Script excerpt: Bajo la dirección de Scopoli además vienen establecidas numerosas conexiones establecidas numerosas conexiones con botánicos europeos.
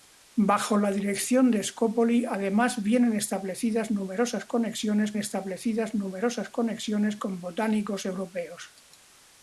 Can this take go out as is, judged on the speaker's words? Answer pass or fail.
pass